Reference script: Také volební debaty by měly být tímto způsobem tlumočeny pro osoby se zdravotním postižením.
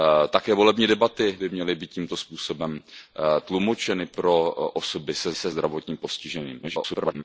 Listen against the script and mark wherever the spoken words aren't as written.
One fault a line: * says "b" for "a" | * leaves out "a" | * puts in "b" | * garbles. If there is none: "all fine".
* puts in "se"
* garbles